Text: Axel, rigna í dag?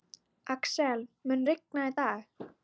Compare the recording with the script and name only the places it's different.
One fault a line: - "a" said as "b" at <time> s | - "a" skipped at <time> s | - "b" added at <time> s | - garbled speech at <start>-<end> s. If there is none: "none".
- "mun" added at 1.3 s